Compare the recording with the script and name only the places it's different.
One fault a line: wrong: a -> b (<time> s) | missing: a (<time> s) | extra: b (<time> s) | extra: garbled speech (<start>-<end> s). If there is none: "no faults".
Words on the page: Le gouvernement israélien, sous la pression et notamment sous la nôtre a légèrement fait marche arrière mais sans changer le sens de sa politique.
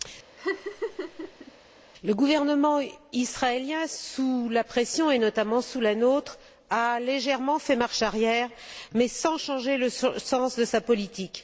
no faults